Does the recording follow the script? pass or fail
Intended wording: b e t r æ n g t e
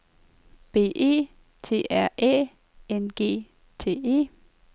pass